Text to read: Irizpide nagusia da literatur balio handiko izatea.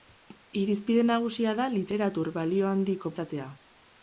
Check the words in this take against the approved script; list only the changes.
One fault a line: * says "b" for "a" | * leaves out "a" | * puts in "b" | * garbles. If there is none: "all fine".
all fine